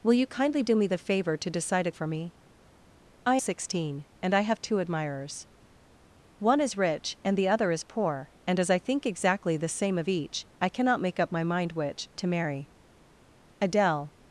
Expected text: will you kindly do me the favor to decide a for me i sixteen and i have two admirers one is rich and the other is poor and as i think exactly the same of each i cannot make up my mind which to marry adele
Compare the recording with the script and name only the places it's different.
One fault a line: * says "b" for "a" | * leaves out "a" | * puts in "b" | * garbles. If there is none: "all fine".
all fine